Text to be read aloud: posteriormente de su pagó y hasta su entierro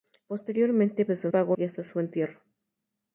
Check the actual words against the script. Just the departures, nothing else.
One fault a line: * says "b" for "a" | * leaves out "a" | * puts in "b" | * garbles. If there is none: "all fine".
all fine